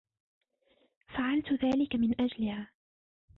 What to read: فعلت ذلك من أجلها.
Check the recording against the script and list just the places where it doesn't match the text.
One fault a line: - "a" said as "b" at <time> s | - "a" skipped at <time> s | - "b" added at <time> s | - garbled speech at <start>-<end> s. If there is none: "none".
none